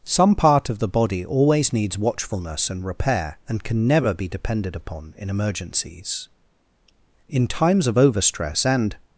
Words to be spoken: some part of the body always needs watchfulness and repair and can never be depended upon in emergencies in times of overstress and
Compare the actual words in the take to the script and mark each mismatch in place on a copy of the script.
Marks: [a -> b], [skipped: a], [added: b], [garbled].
some part of the body always needs watchfulness and repair and can never be depended upon in emergencies in times of overstress and